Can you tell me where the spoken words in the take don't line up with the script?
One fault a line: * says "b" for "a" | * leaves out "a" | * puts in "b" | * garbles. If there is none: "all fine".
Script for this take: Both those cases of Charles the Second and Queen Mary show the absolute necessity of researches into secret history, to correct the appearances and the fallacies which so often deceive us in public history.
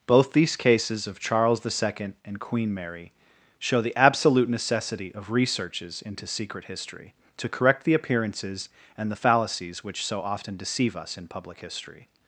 * says "these" for "those"